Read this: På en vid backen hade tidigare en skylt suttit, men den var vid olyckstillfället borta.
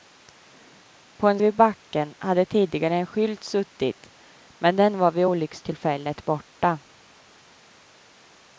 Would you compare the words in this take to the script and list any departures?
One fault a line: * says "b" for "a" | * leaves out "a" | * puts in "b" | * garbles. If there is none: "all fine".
all fine